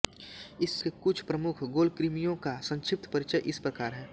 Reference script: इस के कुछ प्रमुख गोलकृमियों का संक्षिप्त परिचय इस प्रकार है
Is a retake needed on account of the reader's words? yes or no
no